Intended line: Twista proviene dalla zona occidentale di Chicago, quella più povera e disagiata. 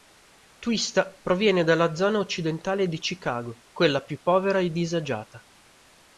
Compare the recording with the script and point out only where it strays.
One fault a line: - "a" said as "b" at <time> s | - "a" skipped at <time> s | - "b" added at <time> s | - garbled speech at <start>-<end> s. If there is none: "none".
none